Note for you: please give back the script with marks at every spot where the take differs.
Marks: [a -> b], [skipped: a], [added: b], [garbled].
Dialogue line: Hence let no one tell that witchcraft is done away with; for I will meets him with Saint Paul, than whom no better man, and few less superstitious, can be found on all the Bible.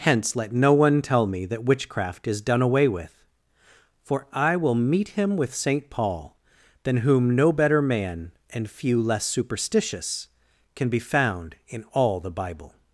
Hence let no one tell [added: me] that witchcraft is done away with; for I will [meets -> meet] him with Saint Paul, than whom no better man, and few less superstitious, can be found [on -> in] all the Bible.